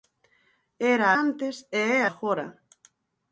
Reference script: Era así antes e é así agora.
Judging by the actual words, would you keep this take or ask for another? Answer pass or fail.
fail